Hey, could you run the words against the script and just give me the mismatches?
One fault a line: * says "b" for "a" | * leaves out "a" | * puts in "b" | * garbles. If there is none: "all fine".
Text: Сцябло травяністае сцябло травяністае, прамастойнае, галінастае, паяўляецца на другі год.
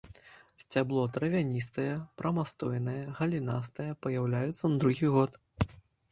* leaves out "сцябло травяністае"